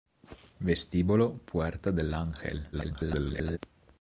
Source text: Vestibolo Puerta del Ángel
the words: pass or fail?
fail